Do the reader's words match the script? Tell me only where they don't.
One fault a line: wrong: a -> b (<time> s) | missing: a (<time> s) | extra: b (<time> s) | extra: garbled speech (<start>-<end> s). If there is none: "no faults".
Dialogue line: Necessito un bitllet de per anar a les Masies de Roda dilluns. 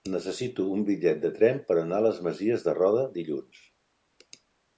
extra: tren (1.4 s)